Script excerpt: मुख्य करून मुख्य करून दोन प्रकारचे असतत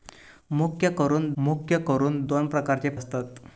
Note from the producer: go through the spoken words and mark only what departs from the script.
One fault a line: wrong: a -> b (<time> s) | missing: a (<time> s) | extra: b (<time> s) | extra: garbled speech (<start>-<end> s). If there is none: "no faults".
no faults